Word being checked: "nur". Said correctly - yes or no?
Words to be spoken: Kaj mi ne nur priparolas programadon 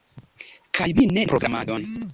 no